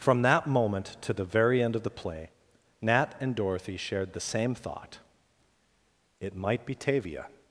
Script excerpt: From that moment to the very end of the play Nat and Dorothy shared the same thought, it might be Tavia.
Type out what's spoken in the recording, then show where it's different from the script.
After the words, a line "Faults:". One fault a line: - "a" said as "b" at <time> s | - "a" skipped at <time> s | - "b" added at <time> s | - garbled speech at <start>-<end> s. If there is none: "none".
From that moment to the very end of the play Nat and Dorothy shared the same thought, it might be Tavia.
Faults:
none